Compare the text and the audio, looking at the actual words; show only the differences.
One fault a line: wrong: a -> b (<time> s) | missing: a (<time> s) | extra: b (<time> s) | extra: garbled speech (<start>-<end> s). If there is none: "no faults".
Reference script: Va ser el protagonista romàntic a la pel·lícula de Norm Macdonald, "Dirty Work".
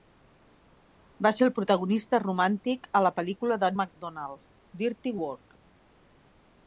missing: Norm (3.7 s)